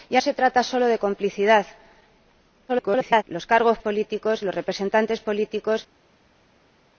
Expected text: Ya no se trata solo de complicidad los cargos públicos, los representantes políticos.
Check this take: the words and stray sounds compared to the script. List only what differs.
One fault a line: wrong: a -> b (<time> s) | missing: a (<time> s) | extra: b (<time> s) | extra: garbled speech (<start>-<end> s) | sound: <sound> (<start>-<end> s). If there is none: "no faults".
missing: no (0.2 s)
extra: garbled speech (2.7-3.2 s)
wrong: públicos -> políticos (3.8 s)